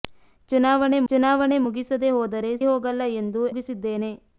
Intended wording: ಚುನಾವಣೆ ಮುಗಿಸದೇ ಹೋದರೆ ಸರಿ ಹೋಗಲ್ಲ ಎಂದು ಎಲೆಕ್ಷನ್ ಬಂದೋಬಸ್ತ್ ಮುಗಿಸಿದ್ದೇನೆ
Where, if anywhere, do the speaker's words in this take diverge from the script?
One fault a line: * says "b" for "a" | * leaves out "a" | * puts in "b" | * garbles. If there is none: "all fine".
* puts in "ಚುನಾವಣೆ"
* leaves out "ಸರಿ"
* leaves out "ಎಲೆಕ್ಷನ್ ಬಂದೋಬಸ್ತ್"